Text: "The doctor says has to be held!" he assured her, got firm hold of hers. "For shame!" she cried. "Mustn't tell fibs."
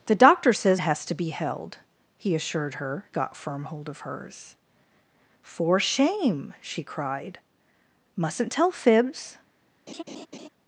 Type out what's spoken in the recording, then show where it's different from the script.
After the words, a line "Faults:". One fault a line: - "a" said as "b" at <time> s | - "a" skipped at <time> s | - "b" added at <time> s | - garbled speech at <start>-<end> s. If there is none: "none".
"The doctor says has to be held!" he assured her, got firm hold of hers. "For shame!" she cried. "Mustn't tell fibs."
Faults:
none